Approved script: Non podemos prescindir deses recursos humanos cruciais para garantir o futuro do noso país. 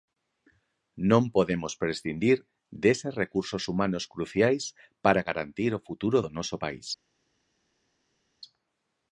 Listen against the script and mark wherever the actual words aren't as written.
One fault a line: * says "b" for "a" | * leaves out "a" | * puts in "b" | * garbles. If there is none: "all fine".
all fine